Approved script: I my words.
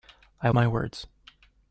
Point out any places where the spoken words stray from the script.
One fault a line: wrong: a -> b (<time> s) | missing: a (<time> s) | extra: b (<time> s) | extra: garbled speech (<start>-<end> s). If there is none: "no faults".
no faults